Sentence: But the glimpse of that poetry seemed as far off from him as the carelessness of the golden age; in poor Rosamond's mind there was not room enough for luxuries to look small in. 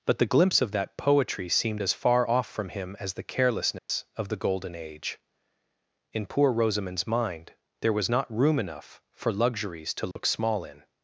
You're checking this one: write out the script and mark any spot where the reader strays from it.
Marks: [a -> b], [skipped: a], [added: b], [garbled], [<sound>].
But the glimpse of that poetry seemed as far off from him as the carelessness [dropout] of the golden age; in poor Rosamond's mind there was not room enough for luxuries to look [dropout] small in.